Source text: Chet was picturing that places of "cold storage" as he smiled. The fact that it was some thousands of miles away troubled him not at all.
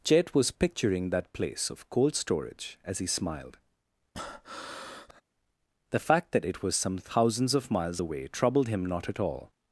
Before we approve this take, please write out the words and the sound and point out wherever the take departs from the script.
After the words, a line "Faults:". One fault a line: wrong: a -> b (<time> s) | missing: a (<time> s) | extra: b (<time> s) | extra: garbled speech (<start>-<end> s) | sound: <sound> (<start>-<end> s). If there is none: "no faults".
Chet was picturing that place of "cold storage" as he smiled. The fact that it was some thousands of miles away troubled him not at all.
Faults:
wrong: places -> place (1.3 s)
sound: breath (4.1-5.2 s)